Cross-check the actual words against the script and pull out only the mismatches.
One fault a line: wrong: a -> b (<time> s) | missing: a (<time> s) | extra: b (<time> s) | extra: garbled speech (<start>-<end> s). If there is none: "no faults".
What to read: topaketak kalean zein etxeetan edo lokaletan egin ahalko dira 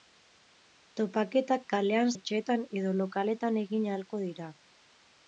missing: zein (2.1 s)